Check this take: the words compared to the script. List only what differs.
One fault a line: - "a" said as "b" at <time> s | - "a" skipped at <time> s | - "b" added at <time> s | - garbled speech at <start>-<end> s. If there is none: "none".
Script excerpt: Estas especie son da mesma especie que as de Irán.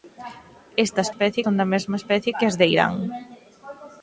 none